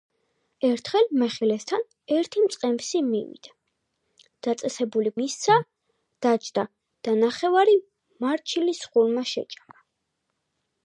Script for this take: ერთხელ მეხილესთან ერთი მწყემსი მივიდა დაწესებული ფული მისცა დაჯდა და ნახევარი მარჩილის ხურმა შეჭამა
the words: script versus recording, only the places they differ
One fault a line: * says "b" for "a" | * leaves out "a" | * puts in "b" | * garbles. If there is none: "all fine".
* leaves out "ფული"